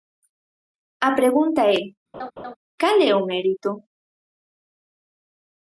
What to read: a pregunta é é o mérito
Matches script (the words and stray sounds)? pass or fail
fail